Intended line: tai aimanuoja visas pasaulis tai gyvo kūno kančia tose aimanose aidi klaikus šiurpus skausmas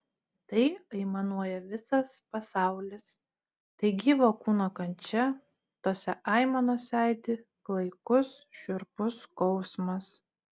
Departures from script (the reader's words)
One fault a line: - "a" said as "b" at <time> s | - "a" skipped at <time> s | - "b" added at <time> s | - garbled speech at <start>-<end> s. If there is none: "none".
none